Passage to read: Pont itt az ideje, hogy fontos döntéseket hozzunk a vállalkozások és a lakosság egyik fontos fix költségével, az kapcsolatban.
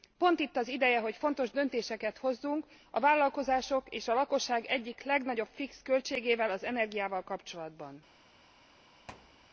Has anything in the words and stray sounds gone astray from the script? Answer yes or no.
yes